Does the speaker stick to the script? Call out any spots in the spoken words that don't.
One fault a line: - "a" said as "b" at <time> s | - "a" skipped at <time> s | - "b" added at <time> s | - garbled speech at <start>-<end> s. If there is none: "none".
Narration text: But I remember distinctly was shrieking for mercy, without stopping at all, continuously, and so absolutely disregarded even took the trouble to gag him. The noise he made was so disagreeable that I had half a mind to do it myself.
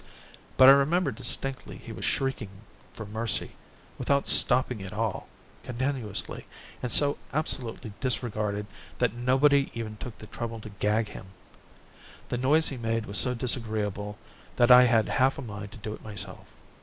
- "he" added at 1.8 s
- "that nobody" added at 9.0 s